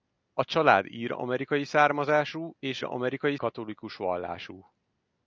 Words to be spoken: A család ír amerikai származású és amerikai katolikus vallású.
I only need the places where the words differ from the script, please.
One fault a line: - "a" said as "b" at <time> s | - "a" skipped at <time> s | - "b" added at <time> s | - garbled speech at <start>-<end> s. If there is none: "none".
none